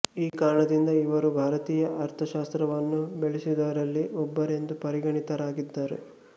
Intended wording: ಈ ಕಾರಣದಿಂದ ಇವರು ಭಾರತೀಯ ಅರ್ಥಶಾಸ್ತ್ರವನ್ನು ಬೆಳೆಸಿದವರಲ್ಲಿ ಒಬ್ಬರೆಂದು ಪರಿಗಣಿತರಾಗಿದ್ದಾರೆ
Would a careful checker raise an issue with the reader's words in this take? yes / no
no